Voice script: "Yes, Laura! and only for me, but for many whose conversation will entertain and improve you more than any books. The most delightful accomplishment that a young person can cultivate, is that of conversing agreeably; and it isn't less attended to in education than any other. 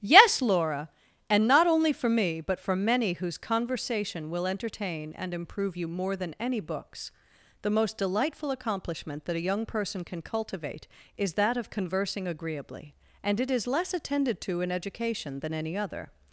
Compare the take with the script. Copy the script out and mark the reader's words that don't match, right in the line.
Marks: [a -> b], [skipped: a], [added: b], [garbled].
"Yes, Laura! and [added: not] only for me, but for many whose conversation will entertain and improve you more than any books. The most delightful accomplishment that a young person can cultivate, is that of conversing agreeably; and it [isn't -> is] less attended to in education than any other.